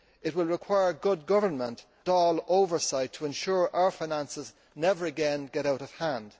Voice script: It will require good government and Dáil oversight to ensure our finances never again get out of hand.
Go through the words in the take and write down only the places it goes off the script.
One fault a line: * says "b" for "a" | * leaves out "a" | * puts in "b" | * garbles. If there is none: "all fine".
* leaves out "and"